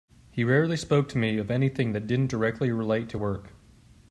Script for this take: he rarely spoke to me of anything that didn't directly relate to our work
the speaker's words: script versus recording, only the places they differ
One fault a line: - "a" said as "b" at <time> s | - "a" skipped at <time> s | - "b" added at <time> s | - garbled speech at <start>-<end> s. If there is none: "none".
- "our" skipped at 3.2 s